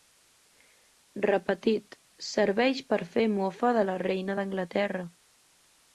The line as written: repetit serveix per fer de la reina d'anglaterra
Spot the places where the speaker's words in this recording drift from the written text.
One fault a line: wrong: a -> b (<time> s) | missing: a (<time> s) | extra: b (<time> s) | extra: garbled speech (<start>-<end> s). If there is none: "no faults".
extra: mofa (3.4 s)